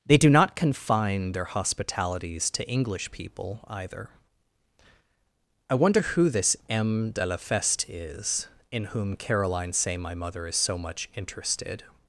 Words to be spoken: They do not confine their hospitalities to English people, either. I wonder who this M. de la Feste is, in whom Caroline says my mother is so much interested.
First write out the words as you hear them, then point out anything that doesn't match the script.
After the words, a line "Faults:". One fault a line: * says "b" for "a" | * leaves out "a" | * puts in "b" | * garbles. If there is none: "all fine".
They do not confine their hospitalities to English people, either. I wonder who this M. de la Feste is, in whom Caroline say my mother is so much interested.
Faults:
* says "say" for "says"